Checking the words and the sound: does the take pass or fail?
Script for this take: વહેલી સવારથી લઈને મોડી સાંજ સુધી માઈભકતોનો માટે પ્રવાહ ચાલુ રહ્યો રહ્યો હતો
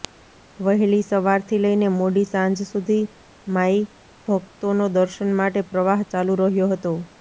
fail